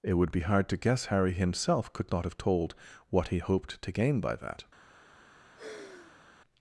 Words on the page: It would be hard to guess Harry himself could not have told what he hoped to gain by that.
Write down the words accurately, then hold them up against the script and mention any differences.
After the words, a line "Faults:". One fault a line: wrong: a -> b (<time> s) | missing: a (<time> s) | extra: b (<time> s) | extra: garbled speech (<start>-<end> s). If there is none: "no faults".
It would be hard to guess Harry himself could not have told what he hoped to gain by that.
Faults:
no faults